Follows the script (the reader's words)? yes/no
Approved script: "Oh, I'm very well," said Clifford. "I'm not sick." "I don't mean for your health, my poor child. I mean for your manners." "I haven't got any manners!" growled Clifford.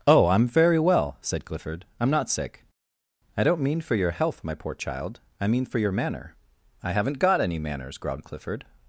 no